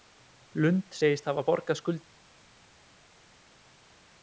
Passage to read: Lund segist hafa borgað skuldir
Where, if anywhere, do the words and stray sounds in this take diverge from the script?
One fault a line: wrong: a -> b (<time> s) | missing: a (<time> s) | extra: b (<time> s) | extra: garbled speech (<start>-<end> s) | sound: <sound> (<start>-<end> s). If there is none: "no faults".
no faults